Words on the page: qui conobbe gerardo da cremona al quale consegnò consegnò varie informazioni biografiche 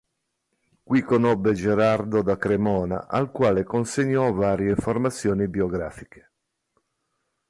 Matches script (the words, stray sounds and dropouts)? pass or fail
fail